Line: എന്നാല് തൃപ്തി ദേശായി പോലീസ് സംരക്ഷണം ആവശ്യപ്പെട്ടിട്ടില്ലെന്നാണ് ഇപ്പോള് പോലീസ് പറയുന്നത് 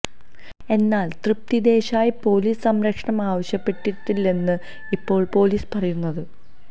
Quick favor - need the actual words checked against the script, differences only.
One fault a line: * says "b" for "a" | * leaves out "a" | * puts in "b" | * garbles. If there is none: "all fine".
all fine